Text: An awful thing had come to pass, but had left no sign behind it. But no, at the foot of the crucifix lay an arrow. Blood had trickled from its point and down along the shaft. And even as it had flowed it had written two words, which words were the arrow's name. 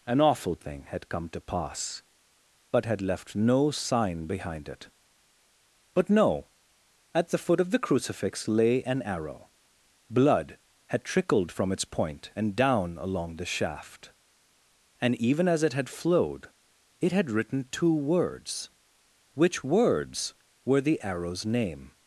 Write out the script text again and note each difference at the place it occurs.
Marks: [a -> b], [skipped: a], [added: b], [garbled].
An awful thing had come to pass, but had left no sign behind it. But no, at the foot of the crucifix lay an arrow. Blood had trickled from its point and down along the shaft. And even as it had flowed it had written two words, which words were the arrow's name.